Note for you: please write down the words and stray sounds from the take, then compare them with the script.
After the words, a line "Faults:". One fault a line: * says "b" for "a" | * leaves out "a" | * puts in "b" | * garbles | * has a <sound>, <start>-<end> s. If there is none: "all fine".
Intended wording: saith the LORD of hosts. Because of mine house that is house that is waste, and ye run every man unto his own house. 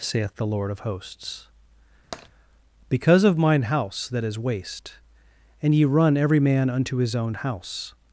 saith the LORD of hosts. Because of mine house that is waste, and ye run every man unto his own house.
Faults:
* has a tap, 2.1-2.3 s
* leaves out "house that is"